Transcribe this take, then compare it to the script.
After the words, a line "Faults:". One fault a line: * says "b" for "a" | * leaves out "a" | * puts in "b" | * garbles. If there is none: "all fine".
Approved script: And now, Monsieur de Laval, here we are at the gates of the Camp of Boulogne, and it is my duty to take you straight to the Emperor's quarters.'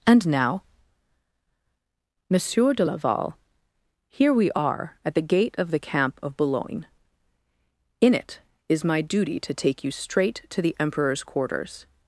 And now, Monsieur de Laval, here we are at the gate of the Camp of Boulogne, in it is my duty to take you straight to the Emperor's quarters.'
Faults:
* says "gate" for "gates"
* says "in" for "and"